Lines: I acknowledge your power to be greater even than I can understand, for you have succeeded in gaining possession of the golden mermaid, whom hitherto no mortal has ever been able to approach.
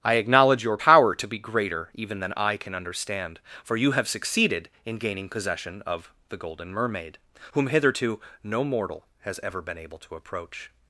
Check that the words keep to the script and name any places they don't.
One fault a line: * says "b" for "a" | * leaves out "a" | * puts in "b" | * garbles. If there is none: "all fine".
all fine